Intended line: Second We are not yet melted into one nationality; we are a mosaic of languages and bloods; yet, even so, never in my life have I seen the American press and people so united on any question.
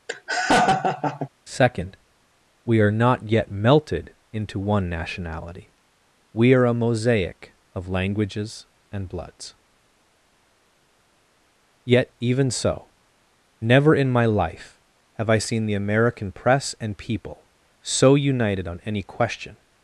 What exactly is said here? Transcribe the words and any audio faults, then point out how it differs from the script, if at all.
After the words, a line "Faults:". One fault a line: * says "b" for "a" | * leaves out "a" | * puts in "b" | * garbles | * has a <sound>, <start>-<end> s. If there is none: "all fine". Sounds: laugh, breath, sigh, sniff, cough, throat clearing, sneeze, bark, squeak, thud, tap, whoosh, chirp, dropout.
Second We are not yet melted into one nationality; we are a mosaic of languages and bloods; yet, even so, never in my life have I seen the American press and people so united on any question.
Faults:
* has a laugh, 0.1-1.3 s